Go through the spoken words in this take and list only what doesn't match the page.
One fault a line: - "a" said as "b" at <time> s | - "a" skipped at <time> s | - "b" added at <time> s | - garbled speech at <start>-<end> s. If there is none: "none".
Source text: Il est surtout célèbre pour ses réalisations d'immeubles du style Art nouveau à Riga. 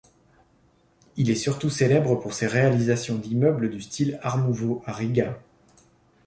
none